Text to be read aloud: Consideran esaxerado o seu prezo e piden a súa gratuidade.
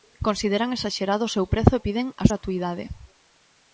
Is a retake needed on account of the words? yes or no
yes